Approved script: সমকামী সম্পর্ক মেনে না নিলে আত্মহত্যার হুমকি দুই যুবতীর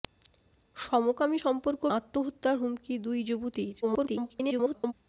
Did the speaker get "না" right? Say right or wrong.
wrong